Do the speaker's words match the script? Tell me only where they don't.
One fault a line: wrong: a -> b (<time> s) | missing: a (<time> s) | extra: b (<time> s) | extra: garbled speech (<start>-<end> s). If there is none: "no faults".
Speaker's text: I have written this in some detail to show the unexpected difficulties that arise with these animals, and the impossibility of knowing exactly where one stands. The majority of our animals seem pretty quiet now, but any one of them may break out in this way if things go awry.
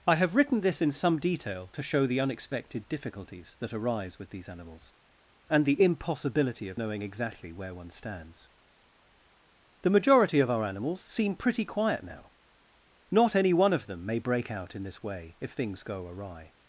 wrong: but -> not (13.1 s)